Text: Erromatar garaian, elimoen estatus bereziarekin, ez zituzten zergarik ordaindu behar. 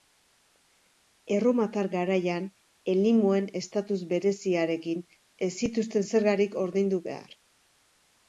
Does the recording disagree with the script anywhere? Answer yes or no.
no